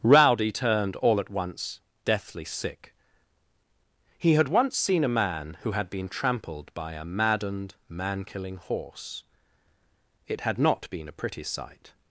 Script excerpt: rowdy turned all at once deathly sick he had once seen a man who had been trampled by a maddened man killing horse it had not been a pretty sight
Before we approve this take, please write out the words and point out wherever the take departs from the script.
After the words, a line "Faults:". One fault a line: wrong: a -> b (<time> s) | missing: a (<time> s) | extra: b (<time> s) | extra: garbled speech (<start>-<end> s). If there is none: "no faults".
rowdy turned all at once deathly sick he had once seen a man who had been trampled by a maddened man killing horse it had not been a pretty sight
Faults:
no faults